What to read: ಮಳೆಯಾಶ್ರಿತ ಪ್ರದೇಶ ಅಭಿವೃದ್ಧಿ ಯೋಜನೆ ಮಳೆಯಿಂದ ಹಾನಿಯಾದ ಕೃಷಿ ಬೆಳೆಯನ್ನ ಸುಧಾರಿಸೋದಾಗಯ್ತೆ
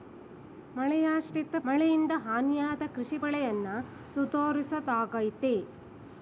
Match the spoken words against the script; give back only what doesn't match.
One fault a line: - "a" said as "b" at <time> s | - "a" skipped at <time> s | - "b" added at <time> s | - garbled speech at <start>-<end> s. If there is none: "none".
- "ಪ್ರದೇಶ ಅಭಿವೃದ್ಧಿ ಯೋಜನೆ" skipped at 1.6 s